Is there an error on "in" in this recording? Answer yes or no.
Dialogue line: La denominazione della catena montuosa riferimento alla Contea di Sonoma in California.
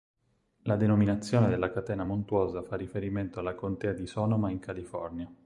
no